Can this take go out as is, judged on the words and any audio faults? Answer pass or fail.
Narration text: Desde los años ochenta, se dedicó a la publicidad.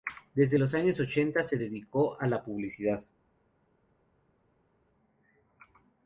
pass